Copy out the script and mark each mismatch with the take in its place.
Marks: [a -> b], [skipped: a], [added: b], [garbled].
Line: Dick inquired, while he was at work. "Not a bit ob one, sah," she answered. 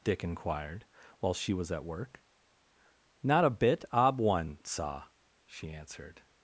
Dick inquired, while [he -> she] was at work. "Not a bit ob one, sah," she answered.